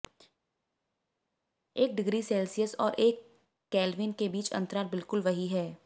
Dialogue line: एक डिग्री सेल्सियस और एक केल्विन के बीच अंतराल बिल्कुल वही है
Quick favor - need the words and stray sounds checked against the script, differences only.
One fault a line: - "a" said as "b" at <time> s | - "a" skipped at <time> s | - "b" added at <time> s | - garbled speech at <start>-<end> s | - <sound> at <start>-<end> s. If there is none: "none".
none